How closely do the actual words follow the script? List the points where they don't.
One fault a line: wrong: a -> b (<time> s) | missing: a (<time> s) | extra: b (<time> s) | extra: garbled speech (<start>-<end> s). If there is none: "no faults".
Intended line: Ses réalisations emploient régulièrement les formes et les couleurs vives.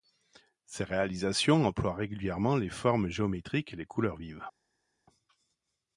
extra: géométriques (3.1 s)